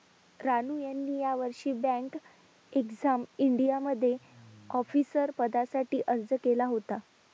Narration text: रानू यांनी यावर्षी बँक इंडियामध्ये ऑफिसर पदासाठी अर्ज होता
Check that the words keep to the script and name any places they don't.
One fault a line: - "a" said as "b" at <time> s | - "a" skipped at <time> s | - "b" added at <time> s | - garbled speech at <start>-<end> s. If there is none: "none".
- "एक्झाम" added at 2.7 s
- "केला" added at 6.4 s